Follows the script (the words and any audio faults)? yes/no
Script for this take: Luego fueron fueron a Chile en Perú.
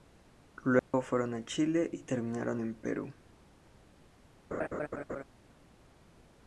no